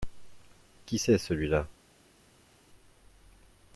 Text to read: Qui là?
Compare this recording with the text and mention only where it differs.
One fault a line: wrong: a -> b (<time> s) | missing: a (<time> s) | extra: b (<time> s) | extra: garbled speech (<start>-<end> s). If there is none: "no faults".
extra: c'est celui (0.9 s)